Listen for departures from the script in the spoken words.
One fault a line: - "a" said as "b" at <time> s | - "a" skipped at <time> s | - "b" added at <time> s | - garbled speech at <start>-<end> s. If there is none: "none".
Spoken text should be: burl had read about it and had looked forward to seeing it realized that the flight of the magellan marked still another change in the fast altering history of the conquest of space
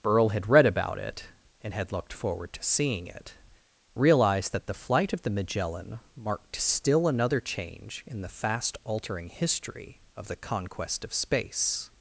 none